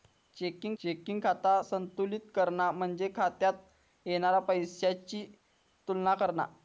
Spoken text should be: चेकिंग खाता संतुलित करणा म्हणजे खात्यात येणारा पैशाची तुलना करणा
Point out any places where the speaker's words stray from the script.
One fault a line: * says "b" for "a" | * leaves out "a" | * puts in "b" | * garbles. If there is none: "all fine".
* puts in "चेकिंग"